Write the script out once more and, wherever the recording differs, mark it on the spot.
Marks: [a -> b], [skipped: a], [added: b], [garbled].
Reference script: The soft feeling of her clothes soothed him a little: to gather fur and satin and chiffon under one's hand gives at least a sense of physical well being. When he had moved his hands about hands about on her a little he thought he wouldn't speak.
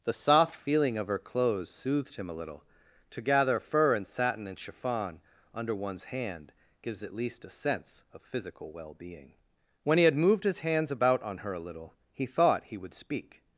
The soft feeling of her clothes soothed him a little: to gather fur and satin and chiffon under one's hand gives at least a sense of physical well being. When he had moved his hands about [skipped: hands about] on her a little he thought he [wouldn't -> would] speak.